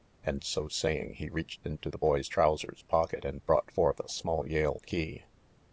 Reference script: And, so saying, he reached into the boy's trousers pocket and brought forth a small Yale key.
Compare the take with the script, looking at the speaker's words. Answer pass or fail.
pass